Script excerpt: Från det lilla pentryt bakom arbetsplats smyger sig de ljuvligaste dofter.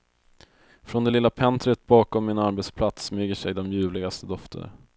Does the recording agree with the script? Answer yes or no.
no